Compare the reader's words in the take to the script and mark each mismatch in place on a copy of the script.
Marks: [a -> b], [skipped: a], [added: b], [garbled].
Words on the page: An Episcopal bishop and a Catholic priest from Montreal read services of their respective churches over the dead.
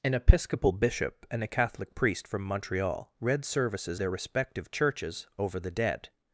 An Episcopal bishop and a Catholic priest from Montreal read services [skipped: of] their respective churches over the dead.